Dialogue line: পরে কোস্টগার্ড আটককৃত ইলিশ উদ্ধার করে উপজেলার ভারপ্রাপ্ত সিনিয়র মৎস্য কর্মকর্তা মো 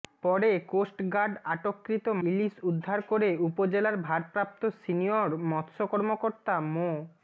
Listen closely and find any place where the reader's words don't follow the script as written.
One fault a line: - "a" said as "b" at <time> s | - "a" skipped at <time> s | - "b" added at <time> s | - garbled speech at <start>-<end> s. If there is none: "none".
none